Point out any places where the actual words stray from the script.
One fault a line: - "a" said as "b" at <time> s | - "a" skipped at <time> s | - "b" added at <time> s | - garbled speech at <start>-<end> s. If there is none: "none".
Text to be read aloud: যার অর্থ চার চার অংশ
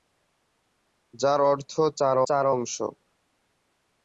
none